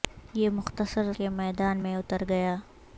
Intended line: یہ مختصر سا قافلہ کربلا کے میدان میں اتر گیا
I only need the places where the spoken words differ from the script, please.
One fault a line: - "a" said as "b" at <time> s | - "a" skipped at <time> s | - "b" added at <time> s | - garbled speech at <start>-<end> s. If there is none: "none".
- "سا قافلہ کربلا" skipped at 1.1 s